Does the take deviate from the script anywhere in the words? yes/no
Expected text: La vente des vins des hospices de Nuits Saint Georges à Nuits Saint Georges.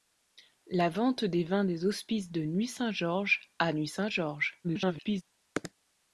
yes